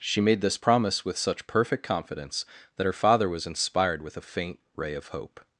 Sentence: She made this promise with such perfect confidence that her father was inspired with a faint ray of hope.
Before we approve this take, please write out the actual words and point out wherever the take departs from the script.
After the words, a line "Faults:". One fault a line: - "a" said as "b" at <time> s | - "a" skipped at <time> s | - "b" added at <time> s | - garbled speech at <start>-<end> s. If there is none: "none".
She made this promise with such perfect confidence that her father was inspired with a faint ray of hope.
Faults:
none